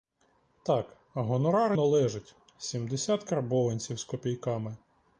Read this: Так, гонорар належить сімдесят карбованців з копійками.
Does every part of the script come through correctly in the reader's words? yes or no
yes